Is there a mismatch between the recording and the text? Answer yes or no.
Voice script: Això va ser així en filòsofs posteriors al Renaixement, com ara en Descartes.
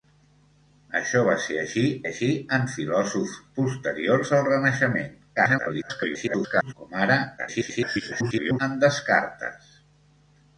yes